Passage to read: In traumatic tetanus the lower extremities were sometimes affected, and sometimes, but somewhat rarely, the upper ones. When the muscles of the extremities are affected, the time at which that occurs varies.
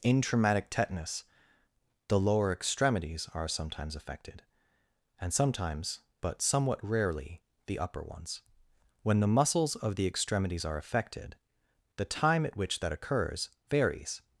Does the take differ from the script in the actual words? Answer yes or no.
yes